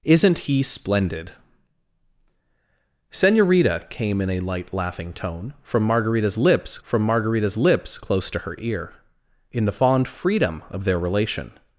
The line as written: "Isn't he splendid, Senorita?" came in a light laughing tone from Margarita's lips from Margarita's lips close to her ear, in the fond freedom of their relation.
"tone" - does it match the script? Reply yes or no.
yes